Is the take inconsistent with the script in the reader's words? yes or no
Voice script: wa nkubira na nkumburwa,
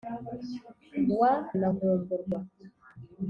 yes